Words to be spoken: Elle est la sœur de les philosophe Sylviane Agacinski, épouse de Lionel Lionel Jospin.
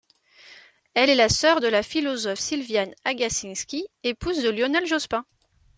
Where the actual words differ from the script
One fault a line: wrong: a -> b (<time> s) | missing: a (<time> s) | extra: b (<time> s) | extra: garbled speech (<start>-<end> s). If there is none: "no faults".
wrong: les -> la (1.7 s)
missing: Lionel (4.9 s)